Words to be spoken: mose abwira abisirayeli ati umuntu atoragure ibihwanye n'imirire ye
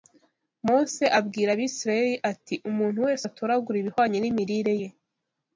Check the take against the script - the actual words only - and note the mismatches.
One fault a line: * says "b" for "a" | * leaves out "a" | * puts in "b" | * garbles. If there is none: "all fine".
* puts in "wese"